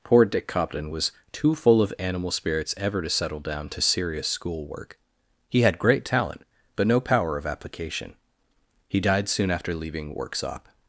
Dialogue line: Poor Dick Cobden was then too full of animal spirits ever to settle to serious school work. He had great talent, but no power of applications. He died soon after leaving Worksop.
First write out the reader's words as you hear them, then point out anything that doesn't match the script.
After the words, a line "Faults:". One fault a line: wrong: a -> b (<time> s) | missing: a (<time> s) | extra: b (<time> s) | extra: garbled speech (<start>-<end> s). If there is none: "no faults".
Poor Dick Cobden was too full of animal spirits ever to settle down to serious school work. He had great talent, but no power of application. He died soon after leaving Worksop.
Faults:
missing: then (1.1 s)
extra: down (3.4 s)
wrong: applications -> application (7.5 s)